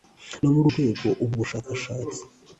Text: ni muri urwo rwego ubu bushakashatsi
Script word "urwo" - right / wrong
wrong